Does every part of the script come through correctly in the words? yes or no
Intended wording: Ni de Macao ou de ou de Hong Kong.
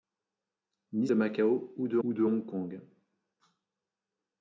yes